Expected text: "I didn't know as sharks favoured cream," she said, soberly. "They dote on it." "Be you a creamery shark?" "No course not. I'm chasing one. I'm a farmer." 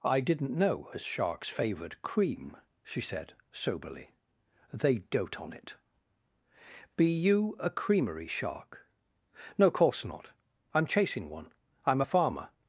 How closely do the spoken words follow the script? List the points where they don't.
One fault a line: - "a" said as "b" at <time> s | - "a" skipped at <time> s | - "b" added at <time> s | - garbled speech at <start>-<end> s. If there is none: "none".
none